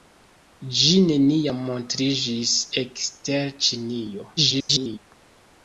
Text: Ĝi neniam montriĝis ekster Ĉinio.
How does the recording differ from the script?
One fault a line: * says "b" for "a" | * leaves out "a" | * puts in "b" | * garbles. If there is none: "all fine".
* garbles